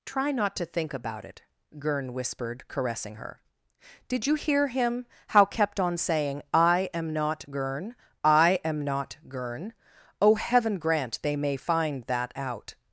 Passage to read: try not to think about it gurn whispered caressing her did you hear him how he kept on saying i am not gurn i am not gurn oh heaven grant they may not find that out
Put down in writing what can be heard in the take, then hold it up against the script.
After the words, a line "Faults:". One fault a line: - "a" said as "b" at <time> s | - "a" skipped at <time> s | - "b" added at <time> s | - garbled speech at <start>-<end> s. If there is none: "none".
try not to think about it gurn whispered caressing her did you hear him how kept on saying i am not gurn i am not gurn oh heaven grant they may find that out
Faults:
- "he" skipped at 5.5 s
- "not" skipped at 11.6 s